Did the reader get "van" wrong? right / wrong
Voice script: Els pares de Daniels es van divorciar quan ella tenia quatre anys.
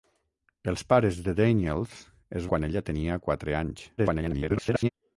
wrong